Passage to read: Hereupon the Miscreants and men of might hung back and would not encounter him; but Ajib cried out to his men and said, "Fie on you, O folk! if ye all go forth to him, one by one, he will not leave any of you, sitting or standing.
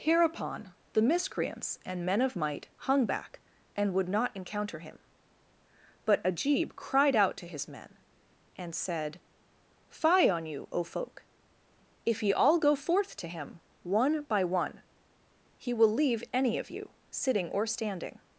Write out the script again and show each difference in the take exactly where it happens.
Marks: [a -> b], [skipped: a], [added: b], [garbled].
Hereupon the Miscreants and men of might hung back and would not encounter him; but Ajib cried out to his men and said, "Fie on you, O folk! if ye all go forth to him, one by one, he will [skipped: not] leave any of you, sitting or standing.